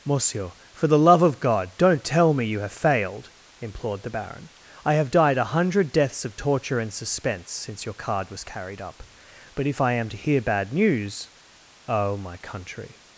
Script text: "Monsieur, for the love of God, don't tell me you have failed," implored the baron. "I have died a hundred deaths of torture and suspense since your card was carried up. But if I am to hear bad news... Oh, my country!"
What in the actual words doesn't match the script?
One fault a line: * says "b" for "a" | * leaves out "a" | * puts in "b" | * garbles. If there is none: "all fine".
all fine